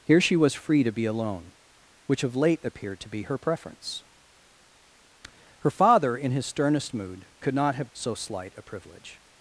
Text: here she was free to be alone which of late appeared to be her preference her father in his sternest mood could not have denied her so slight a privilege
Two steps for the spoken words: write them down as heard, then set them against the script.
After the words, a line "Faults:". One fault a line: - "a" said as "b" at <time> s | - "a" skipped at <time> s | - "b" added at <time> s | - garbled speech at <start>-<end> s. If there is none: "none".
here she was free to be alone which of late appeared to be her preference her father in his sternest mood could not have so slight a privilege
Faults:
- "denied her" skipped at 7.9 s